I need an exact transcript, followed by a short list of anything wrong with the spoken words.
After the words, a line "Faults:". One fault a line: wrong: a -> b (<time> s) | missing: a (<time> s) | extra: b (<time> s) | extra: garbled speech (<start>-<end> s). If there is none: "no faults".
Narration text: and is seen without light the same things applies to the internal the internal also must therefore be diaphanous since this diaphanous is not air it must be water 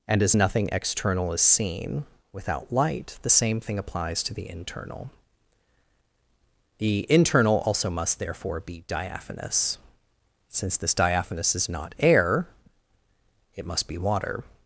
and as nothing external is seen without light the same thing applies to the internal the internal also must therefore be diaphanous since this diaphanous is not air it must be water
Faults:
extra: as nothing external (0.2 s)
wrong: things -> thing (3.6 s)